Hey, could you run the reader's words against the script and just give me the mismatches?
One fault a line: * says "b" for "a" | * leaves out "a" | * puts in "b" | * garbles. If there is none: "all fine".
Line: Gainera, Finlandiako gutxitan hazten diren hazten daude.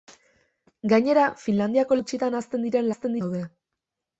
all fine